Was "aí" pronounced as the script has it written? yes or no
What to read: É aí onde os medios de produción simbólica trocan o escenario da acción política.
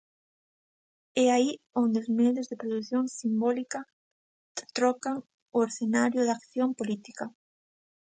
yes